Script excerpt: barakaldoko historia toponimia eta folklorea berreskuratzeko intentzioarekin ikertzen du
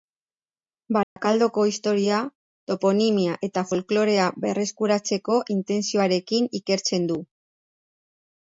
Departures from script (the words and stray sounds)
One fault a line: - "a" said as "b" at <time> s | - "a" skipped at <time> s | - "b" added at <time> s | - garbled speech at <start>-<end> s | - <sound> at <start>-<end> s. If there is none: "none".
- dropout at 1.0-1.2 s